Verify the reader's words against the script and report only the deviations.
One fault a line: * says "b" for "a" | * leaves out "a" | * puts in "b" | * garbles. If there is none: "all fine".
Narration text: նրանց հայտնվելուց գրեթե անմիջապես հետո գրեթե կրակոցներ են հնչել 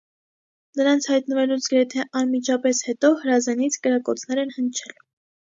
* says "հրազենից" for "գրեթե"